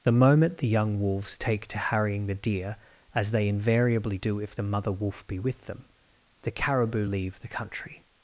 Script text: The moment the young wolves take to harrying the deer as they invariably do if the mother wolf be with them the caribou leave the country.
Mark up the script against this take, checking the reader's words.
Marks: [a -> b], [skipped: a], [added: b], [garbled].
The moment the young wolves take to harrying the deer as they invariably do if the mother wolf be with them the caribou leave the country.